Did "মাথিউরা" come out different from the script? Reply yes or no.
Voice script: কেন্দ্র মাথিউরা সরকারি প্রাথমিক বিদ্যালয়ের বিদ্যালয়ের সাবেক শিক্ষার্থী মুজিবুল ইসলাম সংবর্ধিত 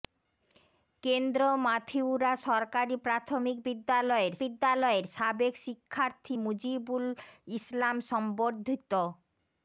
no